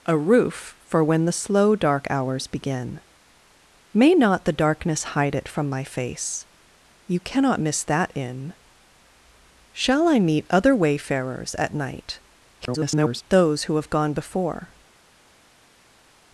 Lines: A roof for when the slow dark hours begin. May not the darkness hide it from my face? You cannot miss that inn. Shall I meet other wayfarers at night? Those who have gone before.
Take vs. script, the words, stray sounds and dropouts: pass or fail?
fail